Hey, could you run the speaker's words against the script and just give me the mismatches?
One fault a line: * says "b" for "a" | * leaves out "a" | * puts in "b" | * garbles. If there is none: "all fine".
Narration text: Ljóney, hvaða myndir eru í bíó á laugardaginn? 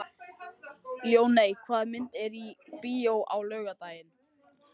all fine